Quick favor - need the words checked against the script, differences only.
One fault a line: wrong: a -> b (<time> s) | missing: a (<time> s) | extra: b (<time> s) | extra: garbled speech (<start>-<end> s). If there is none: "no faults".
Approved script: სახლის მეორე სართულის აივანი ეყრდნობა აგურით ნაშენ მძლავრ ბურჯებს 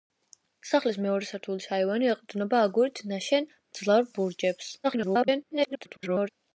extra: garbled speech (4.8-6.3 s)